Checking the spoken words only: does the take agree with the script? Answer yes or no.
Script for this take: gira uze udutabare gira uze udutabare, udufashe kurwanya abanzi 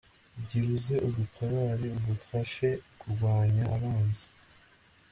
no